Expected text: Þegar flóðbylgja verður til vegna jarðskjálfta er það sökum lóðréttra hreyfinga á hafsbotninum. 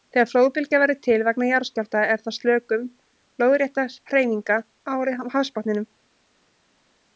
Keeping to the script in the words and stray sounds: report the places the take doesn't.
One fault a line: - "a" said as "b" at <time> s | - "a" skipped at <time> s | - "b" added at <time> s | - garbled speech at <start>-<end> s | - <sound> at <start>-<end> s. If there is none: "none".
none